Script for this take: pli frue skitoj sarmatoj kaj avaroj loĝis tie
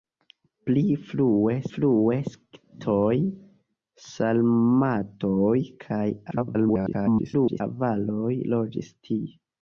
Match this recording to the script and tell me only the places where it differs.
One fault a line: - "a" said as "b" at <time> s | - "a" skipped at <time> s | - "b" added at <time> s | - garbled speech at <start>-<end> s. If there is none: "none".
- "frue" added at 1.7 s
- garbled speech at 6.3-7.6 s